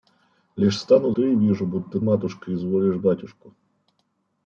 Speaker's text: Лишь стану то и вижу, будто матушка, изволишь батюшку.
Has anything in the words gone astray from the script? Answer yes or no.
no